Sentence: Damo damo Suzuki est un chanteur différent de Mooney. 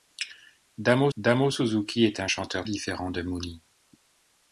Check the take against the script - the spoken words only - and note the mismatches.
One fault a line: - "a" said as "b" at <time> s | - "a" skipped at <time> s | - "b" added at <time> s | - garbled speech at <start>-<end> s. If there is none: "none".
none